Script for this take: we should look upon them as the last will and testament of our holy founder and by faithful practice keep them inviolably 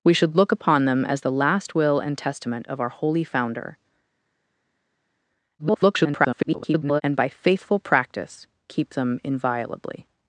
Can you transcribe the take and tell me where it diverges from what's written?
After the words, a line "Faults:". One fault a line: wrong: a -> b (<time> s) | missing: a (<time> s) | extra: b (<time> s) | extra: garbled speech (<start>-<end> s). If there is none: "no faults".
we should look upon them as the last will and testament of our holy founder [garbled] and by faithful practice keep them inviolably
Faults:
extra: garbled speech (5.6-7.0 s)